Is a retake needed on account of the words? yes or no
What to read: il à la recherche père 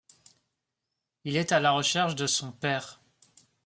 yes